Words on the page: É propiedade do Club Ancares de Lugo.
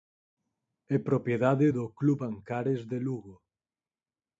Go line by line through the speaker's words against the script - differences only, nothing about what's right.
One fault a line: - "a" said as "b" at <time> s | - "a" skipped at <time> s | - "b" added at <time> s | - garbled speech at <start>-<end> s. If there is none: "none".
none